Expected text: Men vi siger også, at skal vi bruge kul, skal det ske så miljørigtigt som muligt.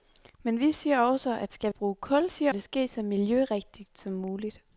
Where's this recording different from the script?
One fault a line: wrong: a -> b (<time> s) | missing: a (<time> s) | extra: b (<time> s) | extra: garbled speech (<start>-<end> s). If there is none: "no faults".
missing: vi (1.7 s)
wrong: skal -> siger (2.3 s)